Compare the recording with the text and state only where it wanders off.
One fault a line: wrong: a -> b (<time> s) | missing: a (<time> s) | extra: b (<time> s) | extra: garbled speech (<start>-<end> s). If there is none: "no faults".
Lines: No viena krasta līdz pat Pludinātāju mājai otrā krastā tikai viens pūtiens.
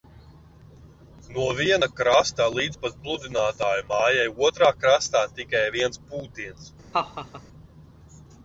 no faults